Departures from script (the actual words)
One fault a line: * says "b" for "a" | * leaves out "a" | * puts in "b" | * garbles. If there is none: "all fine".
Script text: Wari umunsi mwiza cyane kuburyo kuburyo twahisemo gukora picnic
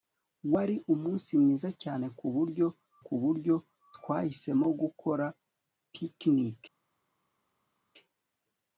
all fine